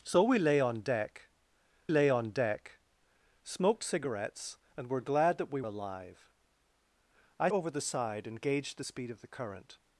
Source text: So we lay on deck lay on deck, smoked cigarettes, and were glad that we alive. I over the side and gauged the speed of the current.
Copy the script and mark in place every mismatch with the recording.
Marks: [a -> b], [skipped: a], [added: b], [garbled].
So we lay on deck lay on deck, smoked cigarettes, and were glad that we alive. I over the side and gauged the speed of the current.